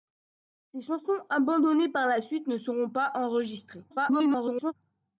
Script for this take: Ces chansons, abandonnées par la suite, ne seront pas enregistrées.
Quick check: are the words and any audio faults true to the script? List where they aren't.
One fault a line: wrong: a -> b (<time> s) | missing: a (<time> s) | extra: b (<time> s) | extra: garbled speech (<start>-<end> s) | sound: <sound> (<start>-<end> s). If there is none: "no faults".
extra: garbled speech (3.9-4.7 s)